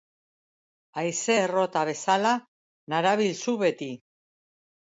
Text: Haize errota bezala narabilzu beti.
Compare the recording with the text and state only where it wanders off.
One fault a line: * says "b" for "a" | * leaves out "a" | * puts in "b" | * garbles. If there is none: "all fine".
all fine